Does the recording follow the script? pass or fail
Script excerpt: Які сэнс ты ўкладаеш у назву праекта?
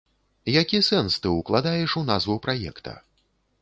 pass